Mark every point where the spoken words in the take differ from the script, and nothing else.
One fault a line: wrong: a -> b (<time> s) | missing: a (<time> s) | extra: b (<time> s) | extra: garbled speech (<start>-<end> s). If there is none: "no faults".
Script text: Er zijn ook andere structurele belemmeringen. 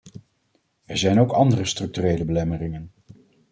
no faults